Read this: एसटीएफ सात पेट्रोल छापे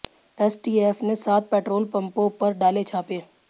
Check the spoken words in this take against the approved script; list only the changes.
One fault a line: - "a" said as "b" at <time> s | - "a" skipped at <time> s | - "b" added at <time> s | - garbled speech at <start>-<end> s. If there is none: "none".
- "ने" added at 1.0 s
- "पंपों पर डाले" added at 1.9 s